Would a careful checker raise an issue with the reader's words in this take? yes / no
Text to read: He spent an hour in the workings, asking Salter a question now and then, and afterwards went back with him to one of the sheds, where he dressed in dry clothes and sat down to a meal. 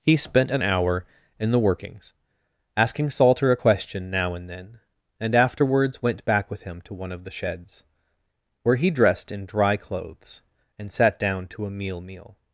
yes